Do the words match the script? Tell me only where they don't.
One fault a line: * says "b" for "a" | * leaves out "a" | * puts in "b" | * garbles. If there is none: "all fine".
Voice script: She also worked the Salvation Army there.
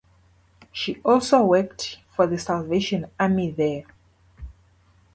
* puts in "for"